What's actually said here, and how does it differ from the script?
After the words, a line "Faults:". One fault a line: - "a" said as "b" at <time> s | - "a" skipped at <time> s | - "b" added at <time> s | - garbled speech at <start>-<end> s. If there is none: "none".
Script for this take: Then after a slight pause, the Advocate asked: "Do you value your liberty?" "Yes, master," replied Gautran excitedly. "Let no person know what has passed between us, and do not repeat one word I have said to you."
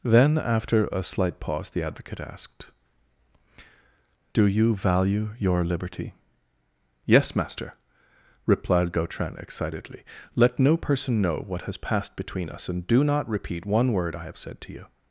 Then after a slight pause, the Advocate asked: "Do you value your liberty?" "Yes, master," replied Gautran excitedly. "Let no person know what has passed between us, and do not repeat one word I have said to you."
Faults:
none